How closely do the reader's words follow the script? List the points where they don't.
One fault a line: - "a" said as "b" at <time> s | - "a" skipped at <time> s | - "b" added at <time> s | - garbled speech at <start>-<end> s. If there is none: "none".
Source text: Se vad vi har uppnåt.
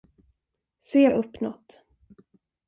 - "vad vi" skipped at 1.1 s